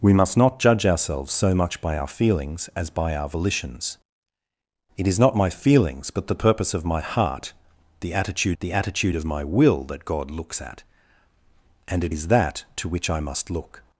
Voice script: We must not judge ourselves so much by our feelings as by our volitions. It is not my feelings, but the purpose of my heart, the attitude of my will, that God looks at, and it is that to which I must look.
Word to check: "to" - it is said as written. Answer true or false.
true